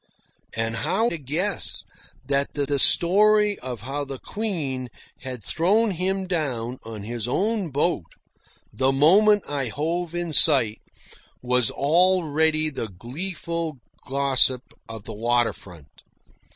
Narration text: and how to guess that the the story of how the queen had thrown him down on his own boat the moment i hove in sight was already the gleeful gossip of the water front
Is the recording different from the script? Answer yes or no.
no